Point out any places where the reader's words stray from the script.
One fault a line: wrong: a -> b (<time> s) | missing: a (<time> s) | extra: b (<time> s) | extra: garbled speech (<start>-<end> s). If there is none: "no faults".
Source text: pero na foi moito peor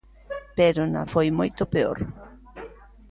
no faults